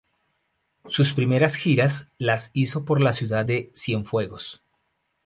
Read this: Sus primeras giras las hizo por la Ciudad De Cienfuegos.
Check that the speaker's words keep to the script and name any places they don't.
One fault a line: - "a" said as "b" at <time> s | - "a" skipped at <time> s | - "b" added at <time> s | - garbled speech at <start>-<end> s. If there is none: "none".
none